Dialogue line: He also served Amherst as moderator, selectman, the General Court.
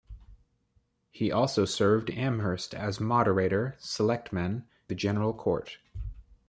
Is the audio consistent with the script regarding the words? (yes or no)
yes